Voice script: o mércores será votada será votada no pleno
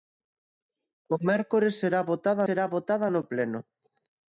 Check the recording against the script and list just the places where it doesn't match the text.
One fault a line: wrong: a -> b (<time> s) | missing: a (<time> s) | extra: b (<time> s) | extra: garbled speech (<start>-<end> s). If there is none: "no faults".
no faults